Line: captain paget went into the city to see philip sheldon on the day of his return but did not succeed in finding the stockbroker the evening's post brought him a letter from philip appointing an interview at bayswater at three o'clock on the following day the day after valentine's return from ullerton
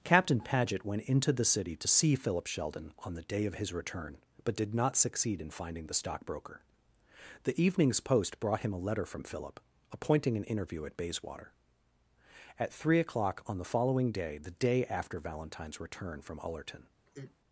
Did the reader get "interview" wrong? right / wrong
right